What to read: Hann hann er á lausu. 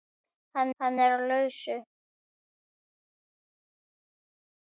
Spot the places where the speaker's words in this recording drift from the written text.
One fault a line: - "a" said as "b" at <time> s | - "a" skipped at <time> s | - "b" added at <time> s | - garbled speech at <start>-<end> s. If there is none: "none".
none